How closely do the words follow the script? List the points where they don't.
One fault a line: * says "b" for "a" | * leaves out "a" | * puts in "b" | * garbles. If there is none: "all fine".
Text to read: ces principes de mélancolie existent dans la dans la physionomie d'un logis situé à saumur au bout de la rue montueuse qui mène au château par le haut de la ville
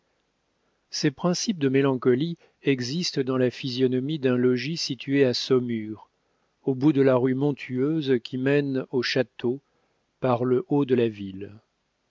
* leaves out "dans la"